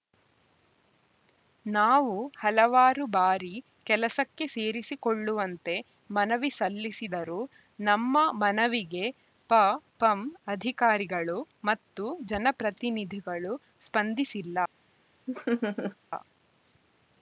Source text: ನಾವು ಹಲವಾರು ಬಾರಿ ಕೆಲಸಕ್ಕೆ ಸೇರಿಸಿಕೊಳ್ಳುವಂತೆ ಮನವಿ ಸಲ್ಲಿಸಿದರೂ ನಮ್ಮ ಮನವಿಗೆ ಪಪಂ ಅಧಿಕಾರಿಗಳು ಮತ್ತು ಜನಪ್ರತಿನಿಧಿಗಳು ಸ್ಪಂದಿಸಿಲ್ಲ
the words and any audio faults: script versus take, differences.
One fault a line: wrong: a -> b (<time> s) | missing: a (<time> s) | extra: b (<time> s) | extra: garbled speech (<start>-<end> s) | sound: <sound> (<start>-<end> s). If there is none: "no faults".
sound: laugh (15.3-16.0 s)